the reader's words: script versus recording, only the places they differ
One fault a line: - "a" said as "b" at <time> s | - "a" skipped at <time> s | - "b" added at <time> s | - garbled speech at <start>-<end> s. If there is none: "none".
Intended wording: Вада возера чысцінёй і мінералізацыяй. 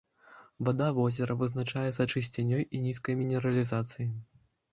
- "вызначаецца" added at 1.4 s
- "нізкай" added at 2.9 s